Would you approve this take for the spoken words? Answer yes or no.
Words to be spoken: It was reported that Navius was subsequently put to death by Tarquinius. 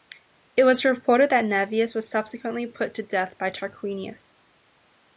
yes